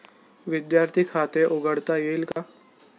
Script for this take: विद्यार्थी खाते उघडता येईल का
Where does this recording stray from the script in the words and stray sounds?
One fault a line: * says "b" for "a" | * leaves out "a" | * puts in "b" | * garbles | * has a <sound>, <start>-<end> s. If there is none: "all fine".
* has a dropout, 2.3-2.4 s